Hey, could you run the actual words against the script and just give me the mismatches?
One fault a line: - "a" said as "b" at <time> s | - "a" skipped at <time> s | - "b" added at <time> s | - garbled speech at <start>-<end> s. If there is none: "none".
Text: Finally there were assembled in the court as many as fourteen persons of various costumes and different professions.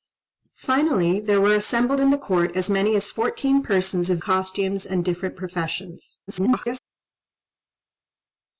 - "various" skipped at 4.2 s
- garbled speech at 6.3-6.8 s